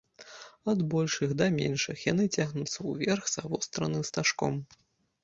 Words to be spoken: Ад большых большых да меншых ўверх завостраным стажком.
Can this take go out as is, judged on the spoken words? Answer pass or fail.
fail